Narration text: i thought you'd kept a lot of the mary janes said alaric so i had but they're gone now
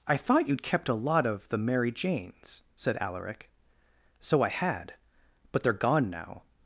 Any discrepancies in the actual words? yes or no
no